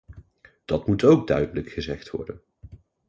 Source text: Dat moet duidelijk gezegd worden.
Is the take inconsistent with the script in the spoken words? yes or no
yes